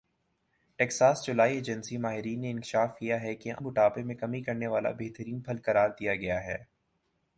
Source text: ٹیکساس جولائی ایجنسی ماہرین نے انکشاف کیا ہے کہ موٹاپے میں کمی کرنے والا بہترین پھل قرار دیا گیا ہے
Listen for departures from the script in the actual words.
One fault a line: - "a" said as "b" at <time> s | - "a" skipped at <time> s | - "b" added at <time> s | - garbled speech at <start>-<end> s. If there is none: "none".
none